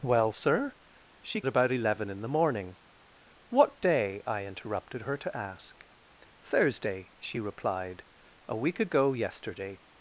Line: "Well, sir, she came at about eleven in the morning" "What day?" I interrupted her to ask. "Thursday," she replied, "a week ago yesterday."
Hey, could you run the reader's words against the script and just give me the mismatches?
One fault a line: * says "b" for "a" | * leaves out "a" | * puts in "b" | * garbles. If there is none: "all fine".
* leaves out "came"